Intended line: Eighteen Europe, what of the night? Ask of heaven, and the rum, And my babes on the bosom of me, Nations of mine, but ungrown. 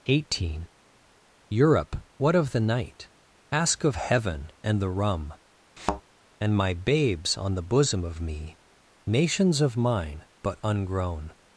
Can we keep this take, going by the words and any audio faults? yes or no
no